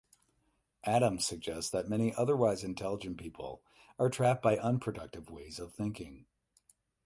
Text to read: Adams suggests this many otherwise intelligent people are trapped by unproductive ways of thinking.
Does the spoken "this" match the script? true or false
false